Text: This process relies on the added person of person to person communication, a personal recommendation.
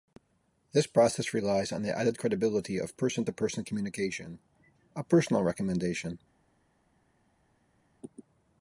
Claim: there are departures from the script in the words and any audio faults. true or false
true